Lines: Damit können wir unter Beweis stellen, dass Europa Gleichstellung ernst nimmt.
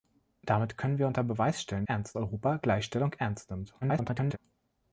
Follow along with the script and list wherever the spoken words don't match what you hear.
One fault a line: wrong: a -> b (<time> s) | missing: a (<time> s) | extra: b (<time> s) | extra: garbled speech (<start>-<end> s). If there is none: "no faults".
wrong: dass -> ernst (1.9 s)
extra: garbled speech (3.8-4.4 s)